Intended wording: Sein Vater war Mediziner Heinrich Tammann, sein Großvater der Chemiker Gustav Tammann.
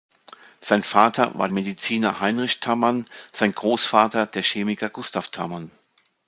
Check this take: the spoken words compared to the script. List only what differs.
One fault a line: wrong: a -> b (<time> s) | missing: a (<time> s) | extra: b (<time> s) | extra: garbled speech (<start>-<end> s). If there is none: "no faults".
no faults